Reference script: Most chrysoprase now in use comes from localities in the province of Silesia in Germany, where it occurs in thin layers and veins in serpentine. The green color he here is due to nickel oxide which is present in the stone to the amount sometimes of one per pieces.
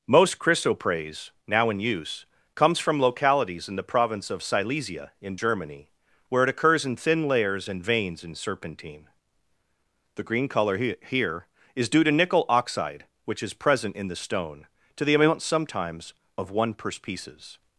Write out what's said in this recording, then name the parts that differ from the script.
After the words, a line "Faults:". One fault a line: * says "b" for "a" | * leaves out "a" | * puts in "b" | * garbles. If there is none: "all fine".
Most chrysoprase now in use comes from localities in the province of Silesia in Germany, where it occurs in thin layers and veins in serpentine. The green color he here is due to nickel oxide which is present in the stone to the amount sometimes of one per pieces.
Faults:
all fine